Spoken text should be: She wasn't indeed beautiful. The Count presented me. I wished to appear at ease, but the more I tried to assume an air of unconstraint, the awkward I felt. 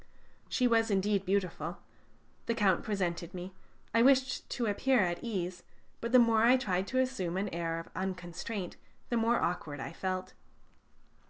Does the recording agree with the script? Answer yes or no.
no